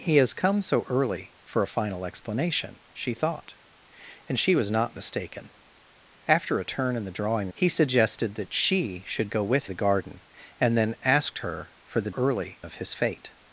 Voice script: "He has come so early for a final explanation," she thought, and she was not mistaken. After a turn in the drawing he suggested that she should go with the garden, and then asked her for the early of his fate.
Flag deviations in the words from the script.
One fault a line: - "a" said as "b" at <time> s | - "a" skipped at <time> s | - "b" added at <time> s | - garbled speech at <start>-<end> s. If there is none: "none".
none